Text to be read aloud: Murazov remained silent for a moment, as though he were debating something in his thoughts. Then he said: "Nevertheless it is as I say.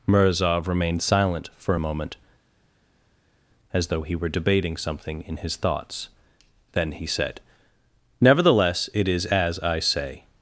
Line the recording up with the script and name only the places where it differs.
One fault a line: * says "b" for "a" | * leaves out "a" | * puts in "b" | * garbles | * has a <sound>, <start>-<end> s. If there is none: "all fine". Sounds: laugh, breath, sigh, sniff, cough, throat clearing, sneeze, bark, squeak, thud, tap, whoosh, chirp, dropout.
all fine